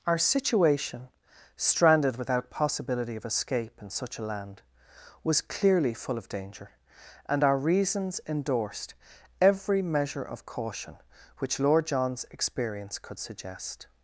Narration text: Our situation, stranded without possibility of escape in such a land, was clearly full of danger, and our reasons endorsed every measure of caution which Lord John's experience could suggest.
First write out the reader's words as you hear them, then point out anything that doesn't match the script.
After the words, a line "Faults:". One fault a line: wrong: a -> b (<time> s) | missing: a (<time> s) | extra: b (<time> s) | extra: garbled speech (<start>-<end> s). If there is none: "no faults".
Our situation, stranded without possibility of escape in such a land, was clearly full of danger, and our reasons endorsed every measure of caution which Lord John's experience could suggest.
Faults:
no faults